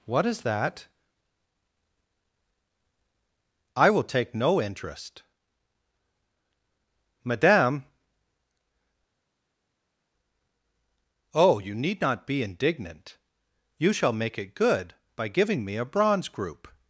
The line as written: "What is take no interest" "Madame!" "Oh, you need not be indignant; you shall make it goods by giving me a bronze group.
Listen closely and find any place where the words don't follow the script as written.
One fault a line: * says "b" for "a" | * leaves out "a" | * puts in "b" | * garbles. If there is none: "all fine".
* puts in "that I will"
* says "good" for "goods"